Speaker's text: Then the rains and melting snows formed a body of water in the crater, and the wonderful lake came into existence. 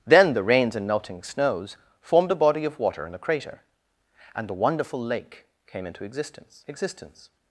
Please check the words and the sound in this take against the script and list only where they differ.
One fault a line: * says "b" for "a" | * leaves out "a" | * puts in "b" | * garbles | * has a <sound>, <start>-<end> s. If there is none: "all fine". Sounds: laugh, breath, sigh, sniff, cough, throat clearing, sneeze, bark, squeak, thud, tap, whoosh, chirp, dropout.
* puts in "existence"